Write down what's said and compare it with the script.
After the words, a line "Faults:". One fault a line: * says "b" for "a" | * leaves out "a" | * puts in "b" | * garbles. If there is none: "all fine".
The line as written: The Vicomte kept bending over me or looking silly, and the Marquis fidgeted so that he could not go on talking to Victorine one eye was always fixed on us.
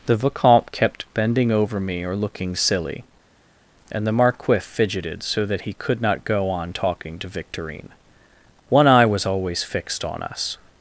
The Vicomte kept bending over me or looking silly, and the Marquis fidgeted so that he could not go on talking to Victorine one eye was always fixed on us.
Faults:
all fine